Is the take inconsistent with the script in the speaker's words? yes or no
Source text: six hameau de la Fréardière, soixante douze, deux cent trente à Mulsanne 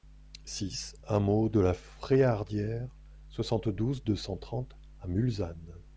no